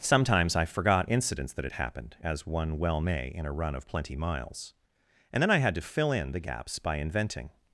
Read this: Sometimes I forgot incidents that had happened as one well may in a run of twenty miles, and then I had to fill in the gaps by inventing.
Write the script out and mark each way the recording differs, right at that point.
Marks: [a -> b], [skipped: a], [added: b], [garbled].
Sometimes I forgot incidents that had happened as one well may in a run of [twenty -> plenty] miles, and then I had to fill in the gaps by inventing.